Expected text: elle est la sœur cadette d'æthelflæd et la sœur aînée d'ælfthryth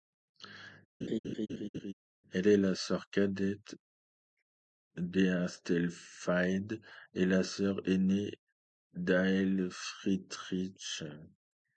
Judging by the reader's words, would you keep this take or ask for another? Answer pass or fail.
pass